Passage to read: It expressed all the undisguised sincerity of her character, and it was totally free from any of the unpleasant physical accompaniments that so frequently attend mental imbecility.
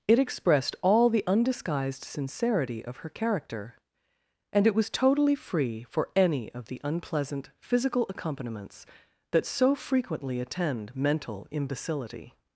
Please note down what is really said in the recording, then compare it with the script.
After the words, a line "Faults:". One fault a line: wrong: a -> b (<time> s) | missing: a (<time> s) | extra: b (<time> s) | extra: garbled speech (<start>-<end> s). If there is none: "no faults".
It expressed all the undisguised sincerity of her character, and it was totally free for any of the unpleasant physical accompaniments that so frequently attend mental imbecility.
Faults:
wrong: from -> for (5.8 s)